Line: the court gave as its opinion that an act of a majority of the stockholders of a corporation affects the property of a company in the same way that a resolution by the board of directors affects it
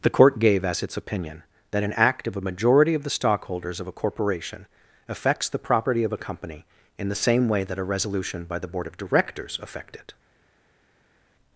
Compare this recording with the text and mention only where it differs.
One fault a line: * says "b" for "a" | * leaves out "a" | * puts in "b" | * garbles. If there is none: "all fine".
* says "affect" for "affects"